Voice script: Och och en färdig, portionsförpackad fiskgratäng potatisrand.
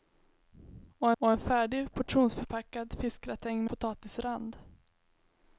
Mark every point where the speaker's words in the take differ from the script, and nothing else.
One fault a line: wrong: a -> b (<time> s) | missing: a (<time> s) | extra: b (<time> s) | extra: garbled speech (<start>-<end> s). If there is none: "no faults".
no faults